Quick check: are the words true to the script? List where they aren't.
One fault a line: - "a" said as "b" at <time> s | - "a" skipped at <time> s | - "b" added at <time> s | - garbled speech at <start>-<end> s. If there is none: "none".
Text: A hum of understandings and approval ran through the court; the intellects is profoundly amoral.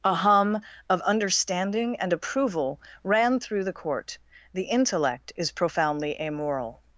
- "understandings" said as "understanding" at 1.0 s
- "intellects" said as "intellect" at 4.6 s